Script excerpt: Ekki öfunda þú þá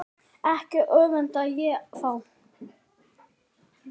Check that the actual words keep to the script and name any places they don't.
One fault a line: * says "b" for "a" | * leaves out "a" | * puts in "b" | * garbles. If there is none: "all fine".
* says "ég" for "þú"